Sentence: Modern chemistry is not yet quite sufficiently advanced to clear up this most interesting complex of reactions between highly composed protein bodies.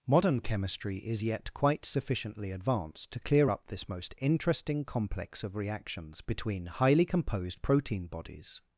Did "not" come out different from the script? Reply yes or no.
yes